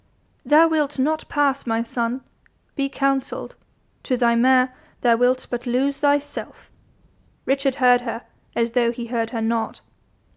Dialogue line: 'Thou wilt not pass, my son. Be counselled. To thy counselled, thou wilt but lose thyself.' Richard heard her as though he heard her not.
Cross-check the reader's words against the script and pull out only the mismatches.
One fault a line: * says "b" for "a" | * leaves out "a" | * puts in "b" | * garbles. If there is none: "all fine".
* says "mare" for "counselled"